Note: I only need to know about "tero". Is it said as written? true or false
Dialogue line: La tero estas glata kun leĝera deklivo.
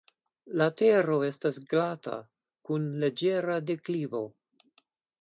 true